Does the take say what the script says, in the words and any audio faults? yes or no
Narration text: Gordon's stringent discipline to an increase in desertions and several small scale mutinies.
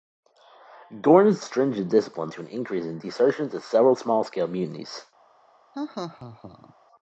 no